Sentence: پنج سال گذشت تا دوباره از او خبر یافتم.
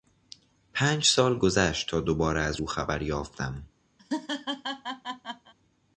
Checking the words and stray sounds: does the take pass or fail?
fail